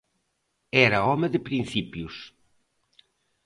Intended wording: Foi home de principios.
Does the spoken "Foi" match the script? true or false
false